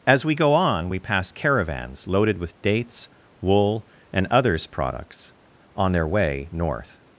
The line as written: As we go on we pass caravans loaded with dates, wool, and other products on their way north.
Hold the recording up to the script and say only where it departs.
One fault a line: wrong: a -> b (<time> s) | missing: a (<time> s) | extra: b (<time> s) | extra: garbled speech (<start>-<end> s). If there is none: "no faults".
wrong: other -> others (4.3 s)